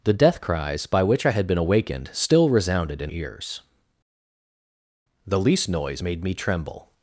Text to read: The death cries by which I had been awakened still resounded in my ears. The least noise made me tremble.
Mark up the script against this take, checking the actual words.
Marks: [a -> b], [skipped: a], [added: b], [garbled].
The death cries by which I had been awakened still resounded in [skipped: my] ears. The least noise made me tremble.